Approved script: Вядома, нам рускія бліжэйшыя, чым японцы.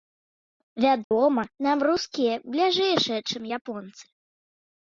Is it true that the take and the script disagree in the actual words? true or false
false